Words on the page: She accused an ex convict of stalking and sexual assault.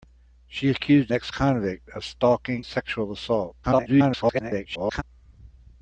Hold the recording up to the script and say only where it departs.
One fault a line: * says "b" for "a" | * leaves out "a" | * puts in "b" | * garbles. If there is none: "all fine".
* leaves out "an"
* leaves out "and"
* garbles